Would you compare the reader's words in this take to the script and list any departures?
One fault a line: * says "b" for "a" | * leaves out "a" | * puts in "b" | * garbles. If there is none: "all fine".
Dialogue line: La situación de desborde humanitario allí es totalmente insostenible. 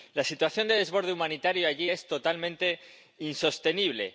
all fine